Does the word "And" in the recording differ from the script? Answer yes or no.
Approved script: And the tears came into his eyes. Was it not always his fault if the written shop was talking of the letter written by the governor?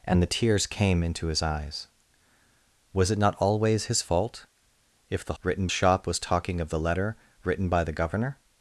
no